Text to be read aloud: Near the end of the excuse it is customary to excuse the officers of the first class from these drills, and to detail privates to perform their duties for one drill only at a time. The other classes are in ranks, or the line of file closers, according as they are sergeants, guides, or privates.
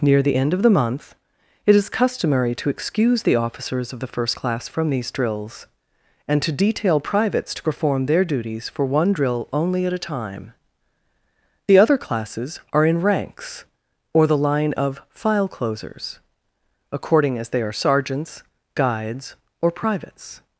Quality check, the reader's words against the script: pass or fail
fail